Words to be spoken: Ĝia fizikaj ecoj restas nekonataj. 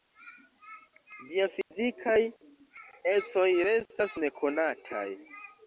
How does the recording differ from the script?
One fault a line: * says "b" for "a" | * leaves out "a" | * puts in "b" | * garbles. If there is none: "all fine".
all fine